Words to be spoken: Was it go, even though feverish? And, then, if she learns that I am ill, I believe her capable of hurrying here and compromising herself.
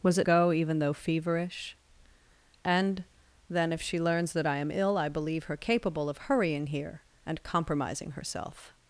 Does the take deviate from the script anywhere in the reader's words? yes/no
no